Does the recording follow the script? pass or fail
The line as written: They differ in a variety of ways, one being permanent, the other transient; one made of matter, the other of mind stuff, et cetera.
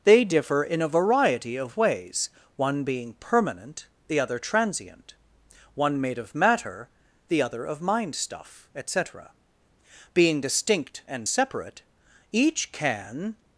fail